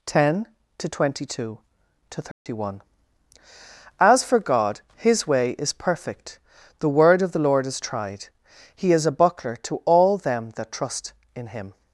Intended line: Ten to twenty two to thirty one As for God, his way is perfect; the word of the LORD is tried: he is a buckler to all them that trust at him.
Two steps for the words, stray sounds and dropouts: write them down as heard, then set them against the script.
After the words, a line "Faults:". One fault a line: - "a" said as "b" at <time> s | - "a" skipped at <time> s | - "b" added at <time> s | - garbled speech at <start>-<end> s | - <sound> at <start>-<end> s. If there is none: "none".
Ten to twenty two to thirty one As for God, his way is perfect; the word of the LORD is tried: he is a buckler to all them that trust in him.
Faults:
- dropout at 2.3-2.5 s
- "at" said as "in" at 11.4 s